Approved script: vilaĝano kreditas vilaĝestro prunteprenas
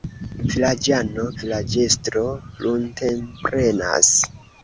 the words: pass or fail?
fail